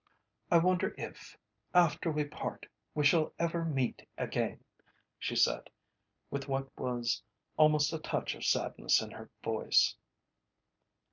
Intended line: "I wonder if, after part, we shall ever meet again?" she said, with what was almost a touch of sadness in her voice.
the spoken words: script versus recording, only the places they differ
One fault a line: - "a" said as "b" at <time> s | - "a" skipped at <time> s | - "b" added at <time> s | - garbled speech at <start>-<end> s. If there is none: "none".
- "we" added at 2.1 s